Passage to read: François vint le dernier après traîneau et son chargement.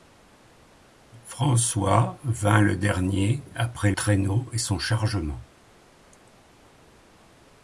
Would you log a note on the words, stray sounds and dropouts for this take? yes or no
no